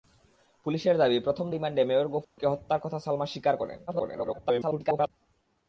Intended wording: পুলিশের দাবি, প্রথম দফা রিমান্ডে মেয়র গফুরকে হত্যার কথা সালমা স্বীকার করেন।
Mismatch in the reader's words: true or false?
true